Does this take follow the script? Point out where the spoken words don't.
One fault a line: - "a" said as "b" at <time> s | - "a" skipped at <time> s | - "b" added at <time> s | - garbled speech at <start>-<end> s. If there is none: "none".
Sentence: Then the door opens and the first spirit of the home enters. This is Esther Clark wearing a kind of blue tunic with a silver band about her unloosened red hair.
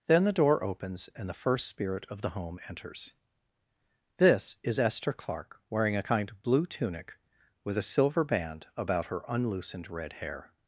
none